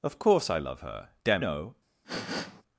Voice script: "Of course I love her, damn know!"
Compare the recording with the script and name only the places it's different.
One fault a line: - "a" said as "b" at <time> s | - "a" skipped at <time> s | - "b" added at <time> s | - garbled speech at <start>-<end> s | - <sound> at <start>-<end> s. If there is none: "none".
- sniff at 2.0-2.6 s